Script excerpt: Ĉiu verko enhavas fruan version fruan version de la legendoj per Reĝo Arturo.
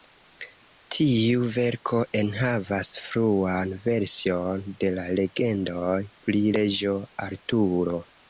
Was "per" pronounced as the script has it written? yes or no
no